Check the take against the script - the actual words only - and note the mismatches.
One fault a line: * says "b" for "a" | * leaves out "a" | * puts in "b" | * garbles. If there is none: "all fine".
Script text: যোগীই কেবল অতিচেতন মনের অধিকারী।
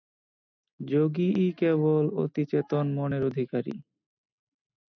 all fine